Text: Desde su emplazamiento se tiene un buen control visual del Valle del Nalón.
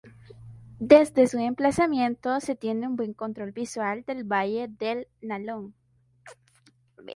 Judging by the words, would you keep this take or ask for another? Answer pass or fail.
pass